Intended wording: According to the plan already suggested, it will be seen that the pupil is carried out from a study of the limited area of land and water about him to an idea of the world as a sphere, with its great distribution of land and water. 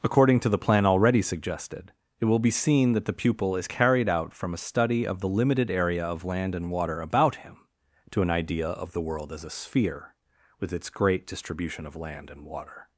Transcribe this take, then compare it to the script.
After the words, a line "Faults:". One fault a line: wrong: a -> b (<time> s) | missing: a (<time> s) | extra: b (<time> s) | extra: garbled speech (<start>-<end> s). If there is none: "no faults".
According to the plan already suggested, it will be seen that the pupil is carried out from a study of the limited area of land and water about him to an idea of the world as a sphere, with its great distribution of land and water.
Faults:
no faults